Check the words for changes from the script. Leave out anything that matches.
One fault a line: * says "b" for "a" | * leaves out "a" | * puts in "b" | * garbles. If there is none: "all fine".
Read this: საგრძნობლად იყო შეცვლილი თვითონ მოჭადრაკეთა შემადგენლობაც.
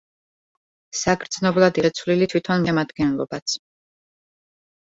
* leaves out "იყო"
* leaves out "მოჭადრაკეთა"